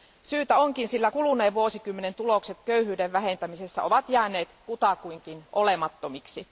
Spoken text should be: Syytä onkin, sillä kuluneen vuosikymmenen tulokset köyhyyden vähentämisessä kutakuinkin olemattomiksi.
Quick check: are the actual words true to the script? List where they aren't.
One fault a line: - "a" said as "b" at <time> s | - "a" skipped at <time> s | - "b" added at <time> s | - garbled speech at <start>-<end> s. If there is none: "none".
- "ovat jääneet" added at 3.8 s